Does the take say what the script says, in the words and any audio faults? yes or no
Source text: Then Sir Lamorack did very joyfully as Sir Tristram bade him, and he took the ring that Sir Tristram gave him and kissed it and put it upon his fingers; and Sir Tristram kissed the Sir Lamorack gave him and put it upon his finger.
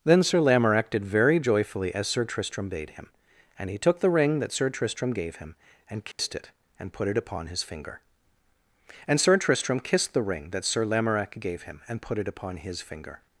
no